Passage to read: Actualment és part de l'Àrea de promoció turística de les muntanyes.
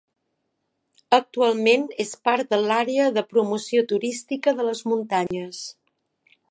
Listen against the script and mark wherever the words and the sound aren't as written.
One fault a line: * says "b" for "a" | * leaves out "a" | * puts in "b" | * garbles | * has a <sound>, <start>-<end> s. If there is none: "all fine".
* has a dropout, 5.3-5.3 s